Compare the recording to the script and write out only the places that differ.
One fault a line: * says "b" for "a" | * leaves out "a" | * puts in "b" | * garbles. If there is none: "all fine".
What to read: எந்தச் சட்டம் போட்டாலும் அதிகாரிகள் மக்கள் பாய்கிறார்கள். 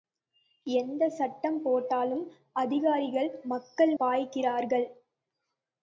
all fine